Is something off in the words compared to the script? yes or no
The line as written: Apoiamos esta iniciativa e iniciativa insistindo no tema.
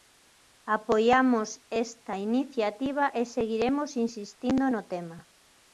yes